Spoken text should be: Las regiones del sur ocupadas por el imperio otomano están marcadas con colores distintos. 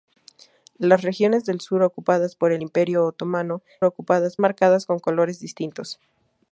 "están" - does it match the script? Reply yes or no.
no